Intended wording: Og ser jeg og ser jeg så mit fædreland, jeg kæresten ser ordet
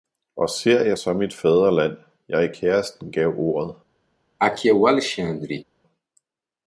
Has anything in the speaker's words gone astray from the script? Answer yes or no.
yes